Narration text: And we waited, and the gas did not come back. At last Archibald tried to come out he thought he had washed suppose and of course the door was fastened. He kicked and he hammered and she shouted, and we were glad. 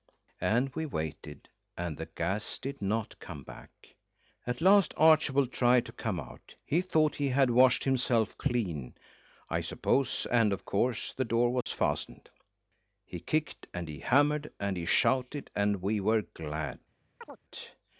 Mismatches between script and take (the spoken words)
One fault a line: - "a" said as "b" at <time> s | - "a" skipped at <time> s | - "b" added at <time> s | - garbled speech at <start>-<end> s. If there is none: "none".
- "himself clean I" added at 7.8 s
- "she" said as "he" at 14.8 s